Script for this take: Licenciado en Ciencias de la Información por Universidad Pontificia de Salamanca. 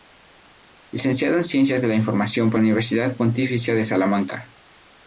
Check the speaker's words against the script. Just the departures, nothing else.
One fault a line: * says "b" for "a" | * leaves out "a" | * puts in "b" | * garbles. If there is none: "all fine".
all fine